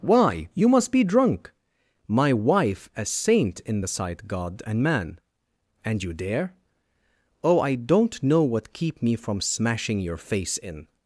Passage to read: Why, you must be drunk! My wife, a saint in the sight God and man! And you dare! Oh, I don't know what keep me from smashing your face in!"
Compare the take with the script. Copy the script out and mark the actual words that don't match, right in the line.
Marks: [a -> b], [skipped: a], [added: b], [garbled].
Why, you must be drunk! My wife, a saint in the sight God and man! And you dare! Oh, I don't know what keep me from smashing your face in!"